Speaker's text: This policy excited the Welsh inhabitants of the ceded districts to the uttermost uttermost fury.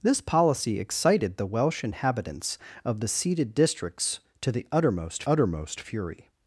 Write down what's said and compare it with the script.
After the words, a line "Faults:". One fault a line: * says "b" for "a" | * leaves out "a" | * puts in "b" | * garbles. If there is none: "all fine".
This policy excited the Welsh inhabitants of the ceded districts to the uttermost uttermost fury.
Faults:
all fine